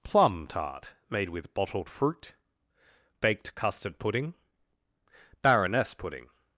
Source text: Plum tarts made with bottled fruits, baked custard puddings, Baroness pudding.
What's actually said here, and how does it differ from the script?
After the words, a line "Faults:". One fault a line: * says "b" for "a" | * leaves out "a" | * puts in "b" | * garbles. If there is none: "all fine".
Plum tart made with bottled fruit, baked custard pudding, Baroness pudding.
Faults:
* says "tart" for "tarts"
* says "fruit" for "fruits"
* says "pudding" for "puddings"